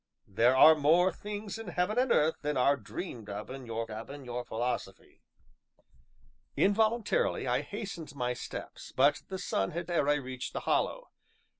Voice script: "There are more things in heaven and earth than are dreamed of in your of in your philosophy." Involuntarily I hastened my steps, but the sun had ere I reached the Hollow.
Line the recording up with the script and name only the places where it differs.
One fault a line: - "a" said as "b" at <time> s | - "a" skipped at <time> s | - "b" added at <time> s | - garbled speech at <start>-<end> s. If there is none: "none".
none